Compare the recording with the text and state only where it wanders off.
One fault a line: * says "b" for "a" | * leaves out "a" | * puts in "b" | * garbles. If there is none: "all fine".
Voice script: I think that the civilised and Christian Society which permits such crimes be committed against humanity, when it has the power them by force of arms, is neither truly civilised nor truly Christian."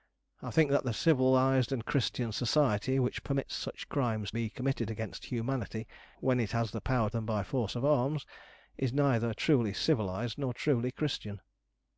all fine